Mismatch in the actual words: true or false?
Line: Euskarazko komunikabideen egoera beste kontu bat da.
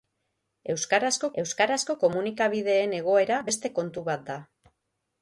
true